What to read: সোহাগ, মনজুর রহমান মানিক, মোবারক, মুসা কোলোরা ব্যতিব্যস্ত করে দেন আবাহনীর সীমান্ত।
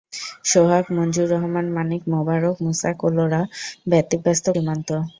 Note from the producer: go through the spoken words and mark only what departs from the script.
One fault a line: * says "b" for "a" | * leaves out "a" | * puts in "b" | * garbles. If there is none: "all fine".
* leaves out "করে দেন আবাহনীর"